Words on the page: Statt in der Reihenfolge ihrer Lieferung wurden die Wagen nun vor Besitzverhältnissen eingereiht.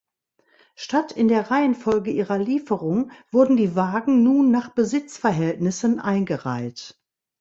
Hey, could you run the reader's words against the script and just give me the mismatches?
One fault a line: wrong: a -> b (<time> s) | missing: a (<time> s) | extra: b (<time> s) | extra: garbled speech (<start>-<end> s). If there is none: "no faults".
wrong: vor -> nach (4.5 s)